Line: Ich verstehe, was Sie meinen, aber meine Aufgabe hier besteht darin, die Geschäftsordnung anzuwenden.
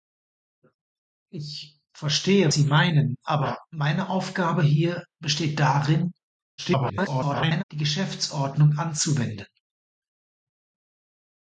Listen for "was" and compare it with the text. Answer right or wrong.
wrong